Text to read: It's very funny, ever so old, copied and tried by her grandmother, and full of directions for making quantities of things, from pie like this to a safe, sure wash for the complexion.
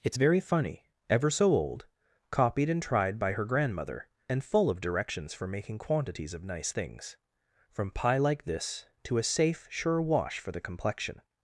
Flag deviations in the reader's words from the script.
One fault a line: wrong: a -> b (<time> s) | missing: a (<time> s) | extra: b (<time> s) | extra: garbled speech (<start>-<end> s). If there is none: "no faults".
extra: nice (6.4 s)